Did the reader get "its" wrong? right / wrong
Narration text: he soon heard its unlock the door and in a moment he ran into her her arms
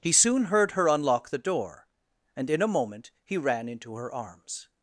wrong